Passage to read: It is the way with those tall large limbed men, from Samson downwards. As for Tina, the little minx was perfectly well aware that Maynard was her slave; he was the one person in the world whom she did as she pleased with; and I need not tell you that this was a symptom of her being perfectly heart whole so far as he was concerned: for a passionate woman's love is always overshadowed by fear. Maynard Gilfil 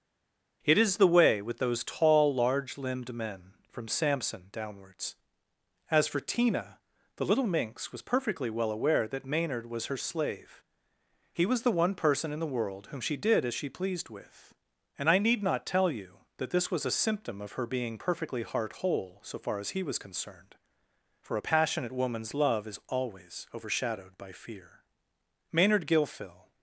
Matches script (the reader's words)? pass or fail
pass